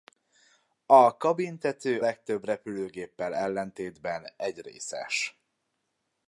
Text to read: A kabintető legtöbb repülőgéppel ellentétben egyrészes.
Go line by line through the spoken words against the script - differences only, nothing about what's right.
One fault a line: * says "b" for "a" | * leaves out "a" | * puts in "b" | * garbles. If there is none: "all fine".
all fine